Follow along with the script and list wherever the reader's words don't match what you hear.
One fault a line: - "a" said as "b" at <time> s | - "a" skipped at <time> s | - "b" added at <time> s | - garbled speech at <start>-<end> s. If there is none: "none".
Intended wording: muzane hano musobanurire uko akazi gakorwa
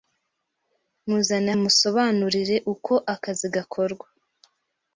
- "hano" skipped at 1.5 s